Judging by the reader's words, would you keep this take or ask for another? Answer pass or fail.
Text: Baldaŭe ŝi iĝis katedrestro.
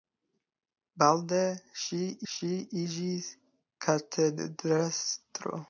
fail